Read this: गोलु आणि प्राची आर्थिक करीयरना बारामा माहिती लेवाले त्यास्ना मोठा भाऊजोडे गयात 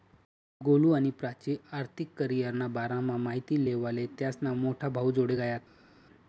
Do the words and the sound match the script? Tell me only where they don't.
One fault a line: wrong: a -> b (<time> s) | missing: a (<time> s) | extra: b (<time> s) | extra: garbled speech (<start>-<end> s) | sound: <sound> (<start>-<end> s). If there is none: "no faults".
no faults